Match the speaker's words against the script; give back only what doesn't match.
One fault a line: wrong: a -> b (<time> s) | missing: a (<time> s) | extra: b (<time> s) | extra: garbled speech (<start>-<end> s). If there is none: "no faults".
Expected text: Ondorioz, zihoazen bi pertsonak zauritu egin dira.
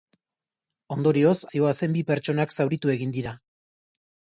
no faults